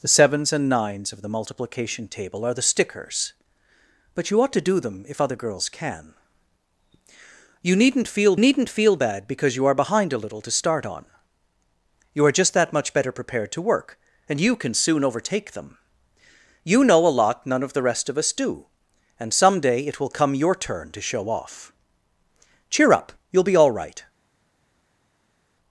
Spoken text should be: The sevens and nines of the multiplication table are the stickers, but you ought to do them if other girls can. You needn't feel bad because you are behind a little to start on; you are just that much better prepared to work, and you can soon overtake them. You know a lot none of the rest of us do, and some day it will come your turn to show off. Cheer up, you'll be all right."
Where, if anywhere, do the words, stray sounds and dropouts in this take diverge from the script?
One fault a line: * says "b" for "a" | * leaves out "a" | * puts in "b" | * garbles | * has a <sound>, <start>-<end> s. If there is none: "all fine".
* puts in "needn't feel"